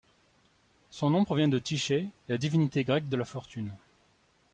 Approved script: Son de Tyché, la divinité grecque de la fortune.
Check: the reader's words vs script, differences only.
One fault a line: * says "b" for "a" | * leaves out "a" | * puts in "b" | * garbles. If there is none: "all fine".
* puts in "nom provient"